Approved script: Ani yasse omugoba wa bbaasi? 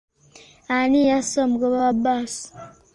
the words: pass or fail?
pass